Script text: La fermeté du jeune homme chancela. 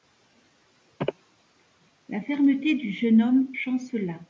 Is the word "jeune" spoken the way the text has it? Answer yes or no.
yes